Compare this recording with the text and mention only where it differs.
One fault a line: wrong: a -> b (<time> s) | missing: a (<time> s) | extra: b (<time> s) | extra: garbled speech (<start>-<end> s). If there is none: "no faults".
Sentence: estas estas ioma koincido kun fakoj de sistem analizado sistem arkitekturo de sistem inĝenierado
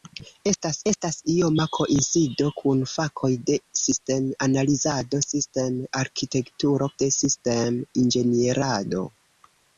no faults